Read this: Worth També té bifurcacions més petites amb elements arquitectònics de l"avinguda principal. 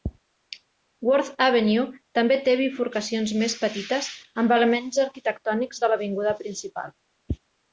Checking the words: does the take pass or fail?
fail